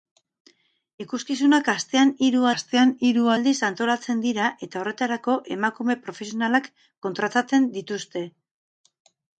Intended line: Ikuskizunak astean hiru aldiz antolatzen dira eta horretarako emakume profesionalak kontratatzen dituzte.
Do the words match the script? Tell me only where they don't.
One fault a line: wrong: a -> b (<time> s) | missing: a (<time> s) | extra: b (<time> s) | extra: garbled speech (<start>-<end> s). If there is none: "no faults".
extra: astean hiru (2.5 s)